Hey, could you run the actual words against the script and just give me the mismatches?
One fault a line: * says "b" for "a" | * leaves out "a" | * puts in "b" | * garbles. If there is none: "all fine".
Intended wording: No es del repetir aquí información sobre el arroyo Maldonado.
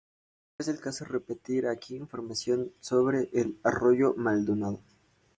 * puts in "caso"